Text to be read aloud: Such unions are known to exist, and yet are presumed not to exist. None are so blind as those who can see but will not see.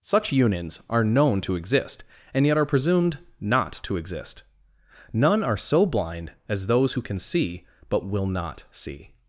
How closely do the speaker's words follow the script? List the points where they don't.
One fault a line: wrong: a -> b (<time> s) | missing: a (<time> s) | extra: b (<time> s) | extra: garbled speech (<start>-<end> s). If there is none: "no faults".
no faults